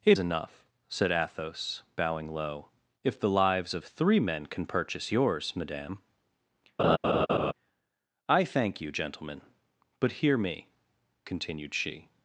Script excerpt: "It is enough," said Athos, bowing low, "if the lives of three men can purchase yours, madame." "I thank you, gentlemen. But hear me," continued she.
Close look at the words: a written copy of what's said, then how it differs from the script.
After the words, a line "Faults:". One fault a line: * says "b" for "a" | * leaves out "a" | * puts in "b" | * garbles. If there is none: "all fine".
"It enough," said Athos, bowing low, "if the lives of three men can purchase yours, madame." "I thank you, gentlemen. But hear me," continued she.
Faults:
* leaves out "is"